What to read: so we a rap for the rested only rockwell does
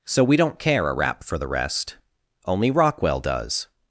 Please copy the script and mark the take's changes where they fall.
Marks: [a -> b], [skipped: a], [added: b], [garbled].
so we [added: don't care] a rap for the [rested -> rest] only rockwell does